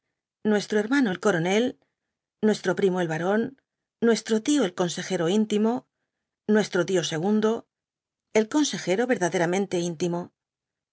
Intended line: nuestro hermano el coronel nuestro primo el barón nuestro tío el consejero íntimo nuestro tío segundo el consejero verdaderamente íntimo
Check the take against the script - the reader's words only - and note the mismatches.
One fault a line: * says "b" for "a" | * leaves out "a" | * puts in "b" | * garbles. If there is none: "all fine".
all fine